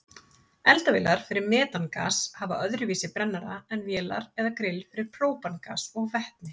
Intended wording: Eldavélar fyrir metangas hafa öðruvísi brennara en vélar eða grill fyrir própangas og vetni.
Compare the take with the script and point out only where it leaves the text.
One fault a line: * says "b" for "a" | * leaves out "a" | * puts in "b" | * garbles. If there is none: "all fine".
all fine